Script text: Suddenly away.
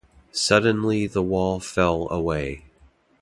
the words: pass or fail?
fail